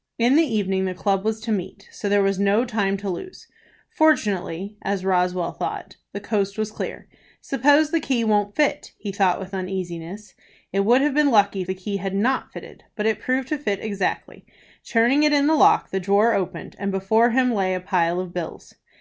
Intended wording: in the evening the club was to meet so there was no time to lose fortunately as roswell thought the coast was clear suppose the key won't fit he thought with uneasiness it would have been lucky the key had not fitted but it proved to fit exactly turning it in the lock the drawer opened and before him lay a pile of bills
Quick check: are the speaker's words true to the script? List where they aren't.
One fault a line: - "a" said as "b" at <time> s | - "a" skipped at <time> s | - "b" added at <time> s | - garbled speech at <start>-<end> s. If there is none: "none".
none